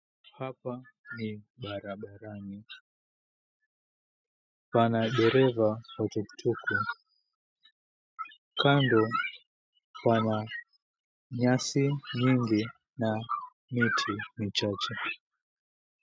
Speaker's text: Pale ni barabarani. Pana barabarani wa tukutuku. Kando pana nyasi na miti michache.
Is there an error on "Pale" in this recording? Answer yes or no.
yes